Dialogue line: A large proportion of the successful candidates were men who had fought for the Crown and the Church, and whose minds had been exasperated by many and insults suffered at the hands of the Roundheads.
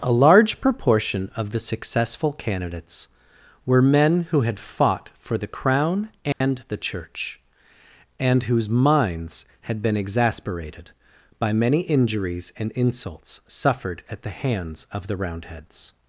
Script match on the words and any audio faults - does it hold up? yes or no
no